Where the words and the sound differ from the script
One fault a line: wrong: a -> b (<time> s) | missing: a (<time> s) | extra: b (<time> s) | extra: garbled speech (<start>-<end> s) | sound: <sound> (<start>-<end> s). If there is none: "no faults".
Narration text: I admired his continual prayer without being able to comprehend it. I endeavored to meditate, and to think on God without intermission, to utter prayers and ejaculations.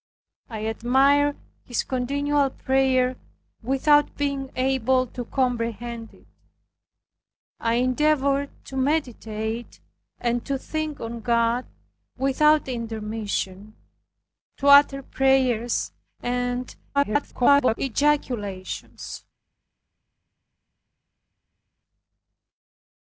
extra: garbled speech (16.9-17.8 s)